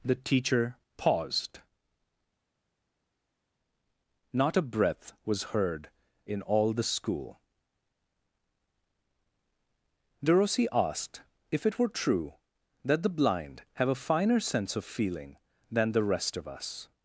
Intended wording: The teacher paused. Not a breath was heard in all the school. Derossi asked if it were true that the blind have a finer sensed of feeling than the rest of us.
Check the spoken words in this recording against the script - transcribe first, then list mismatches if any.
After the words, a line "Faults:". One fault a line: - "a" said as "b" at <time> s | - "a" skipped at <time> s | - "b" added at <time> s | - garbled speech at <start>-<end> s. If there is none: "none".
The teacher paused. Not a breath was heard in all the school. Derossi asked if it were true that the blind have a finer sense of feeling than the rest of us.
Faults:
- "sensed" said as "sense" at 14.4 s